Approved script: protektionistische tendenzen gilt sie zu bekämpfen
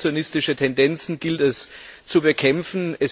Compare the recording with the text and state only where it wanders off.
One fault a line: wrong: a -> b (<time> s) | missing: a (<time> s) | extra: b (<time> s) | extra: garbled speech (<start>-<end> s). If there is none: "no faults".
wrong: sie -> es (1.4 s)